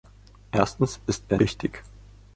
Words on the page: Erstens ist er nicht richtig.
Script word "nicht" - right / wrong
wrong